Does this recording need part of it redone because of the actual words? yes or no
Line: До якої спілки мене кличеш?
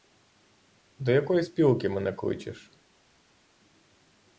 no